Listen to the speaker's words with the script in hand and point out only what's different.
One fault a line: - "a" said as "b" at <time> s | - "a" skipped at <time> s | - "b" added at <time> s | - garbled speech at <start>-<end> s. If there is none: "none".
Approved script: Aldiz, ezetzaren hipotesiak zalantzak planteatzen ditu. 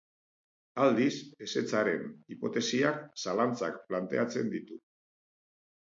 none